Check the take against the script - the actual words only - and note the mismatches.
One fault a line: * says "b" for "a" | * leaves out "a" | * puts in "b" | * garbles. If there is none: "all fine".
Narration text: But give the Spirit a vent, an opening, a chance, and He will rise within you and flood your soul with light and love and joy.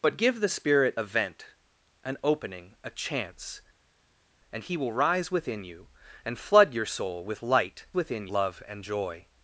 * says "within" for "and"